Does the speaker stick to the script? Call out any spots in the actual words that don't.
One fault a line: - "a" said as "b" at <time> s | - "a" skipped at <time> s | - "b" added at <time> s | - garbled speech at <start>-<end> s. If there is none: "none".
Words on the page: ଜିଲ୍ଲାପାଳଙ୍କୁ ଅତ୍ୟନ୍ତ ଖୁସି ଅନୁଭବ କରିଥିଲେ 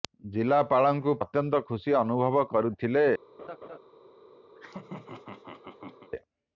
none